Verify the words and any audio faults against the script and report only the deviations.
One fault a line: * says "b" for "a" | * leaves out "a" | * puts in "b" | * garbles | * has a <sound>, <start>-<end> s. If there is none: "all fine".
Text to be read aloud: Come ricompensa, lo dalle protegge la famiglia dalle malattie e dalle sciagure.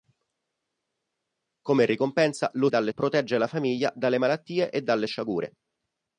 all fine